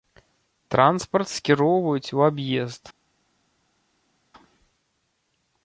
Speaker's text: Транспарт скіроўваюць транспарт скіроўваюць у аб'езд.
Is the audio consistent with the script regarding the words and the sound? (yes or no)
no